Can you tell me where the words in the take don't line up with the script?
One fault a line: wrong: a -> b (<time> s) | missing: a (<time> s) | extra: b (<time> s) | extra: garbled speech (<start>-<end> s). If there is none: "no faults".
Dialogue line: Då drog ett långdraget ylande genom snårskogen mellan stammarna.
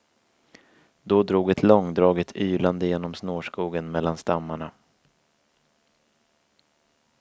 no faults